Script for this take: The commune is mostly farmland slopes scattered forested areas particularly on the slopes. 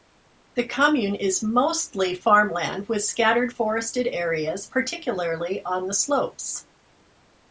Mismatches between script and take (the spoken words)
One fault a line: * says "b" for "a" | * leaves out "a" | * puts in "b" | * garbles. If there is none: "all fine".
* says "with" for "slopes"